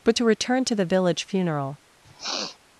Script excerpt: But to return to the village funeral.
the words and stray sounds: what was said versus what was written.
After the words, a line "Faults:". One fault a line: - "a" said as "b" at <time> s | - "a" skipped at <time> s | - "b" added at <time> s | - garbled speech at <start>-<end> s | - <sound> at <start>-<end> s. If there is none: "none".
But to return to the village funeral.
Faults:
- sniff at 2.0-2.6 s